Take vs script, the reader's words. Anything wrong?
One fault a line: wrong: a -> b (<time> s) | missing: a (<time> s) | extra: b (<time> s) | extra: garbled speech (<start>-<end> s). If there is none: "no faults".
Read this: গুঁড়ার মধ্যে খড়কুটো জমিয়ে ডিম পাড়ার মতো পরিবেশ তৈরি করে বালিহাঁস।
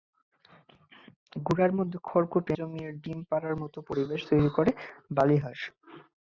no faults